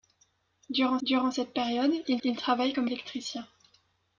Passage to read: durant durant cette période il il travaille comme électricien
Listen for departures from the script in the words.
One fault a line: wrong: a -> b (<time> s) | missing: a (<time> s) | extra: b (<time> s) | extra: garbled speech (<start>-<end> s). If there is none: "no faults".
no faults